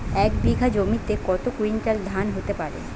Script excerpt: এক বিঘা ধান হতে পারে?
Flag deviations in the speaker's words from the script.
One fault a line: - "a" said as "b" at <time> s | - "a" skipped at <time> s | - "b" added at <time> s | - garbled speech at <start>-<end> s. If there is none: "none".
- "জমিতে কত কুইন্টাল" added at 0.7 s